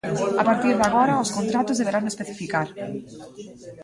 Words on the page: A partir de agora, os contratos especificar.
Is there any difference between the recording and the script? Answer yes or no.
yes